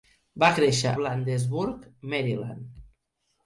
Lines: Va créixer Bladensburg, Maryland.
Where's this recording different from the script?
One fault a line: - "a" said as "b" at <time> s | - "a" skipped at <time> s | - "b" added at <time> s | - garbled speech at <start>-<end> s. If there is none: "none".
none